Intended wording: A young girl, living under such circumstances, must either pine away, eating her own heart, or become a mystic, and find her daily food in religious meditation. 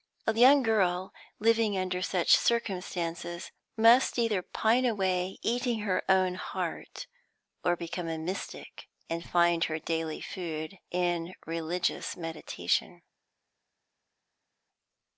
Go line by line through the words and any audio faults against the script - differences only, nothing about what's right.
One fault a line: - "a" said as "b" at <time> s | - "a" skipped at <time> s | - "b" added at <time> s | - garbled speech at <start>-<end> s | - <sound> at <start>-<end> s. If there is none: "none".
none